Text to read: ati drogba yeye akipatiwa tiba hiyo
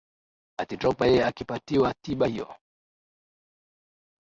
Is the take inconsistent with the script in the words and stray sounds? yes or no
no